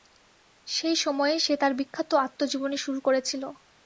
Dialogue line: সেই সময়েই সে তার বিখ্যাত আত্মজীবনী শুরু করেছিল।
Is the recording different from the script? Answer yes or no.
no